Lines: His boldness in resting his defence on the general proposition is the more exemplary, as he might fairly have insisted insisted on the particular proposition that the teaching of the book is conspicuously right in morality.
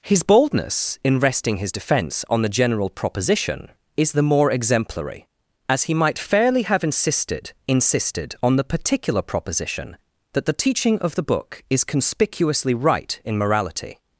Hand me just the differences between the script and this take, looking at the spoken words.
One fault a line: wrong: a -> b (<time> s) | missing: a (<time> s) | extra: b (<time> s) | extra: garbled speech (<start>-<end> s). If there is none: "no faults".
no faults